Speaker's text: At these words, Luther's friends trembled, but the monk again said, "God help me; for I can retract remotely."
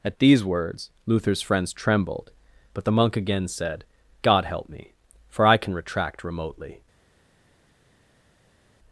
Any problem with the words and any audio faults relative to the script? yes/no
no